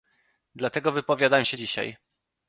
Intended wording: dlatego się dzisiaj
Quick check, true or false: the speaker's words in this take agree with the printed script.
false